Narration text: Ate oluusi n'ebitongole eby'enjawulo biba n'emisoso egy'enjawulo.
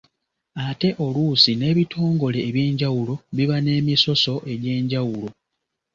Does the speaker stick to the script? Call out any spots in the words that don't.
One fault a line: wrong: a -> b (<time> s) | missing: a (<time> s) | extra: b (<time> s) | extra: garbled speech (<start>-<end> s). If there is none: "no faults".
no faults